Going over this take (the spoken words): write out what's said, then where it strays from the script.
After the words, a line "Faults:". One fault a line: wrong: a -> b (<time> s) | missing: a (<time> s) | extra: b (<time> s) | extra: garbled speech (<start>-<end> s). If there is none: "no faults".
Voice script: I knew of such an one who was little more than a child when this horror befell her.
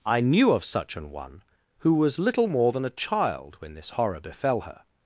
I knew of such an one who was little more than a child when this horror befell her.
Faults:
no faults